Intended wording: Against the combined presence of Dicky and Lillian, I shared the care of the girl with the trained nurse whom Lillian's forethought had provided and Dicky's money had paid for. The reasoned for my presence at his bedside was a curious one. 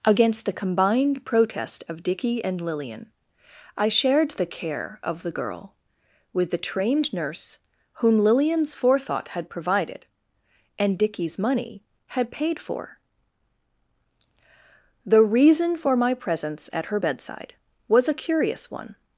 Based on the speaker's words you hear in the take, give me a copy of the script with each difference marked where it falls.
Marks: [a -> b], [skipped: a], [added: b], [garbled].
Against the combined [presence -> protest] of Dicky and Lillian, I shared the care of the girl with the trained nurse whom Lillian's forethought had provided and Dicky's money had paid for. The [reasoned -> reason] for my presence at [his -> her] bedside was a curious one.